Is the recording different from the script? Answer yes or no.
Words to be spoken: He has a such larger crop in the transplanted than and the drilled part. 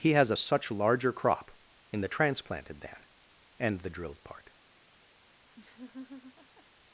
no